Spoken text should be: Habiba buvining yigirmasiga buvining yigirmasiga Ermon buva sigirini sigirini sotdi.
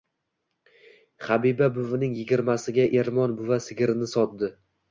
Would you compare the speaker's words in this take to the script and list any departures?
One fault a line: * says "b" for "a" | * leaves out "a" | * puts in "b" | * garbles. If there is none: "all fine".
* leaves out "buvining yigirmasiga"
* leaves out "sigirini"